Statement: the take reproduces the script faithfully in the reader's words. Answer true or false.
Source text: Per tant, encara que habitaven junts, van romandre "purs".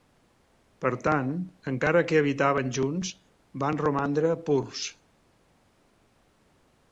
true